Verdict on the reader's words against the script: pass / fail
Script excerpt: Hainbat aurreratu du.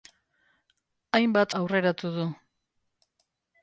pass